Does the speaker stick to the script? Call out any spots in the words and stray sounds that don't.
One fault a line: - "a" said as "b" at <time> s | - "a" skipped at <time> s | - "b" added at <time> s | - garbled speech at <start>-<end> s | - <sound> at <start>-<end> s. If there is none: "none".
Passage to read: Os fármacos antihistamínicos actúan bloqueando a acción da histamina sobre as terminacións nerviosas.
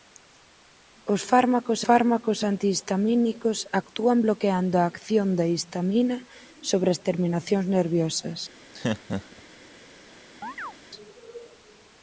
- "fármacos" added at 1.9 s
- laugh at 8.7-9.4 s
- chirp at 10.4-10.7 s